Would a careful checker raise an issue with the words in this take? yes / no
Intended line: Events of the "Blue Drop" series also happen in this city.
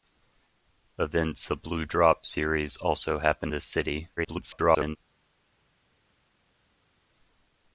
yes